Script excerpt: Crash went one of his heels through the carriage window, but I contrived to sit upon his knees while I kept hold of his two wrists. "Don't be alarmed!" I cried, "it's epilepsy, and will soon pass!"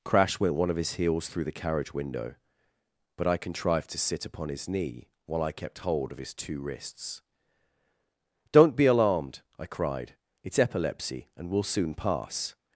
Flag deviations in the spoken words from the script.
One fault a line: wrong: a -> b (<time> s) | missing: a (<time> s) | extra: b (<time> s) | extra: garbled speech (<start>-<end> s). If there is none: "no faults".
wrong: knees -> knee (4.7 s)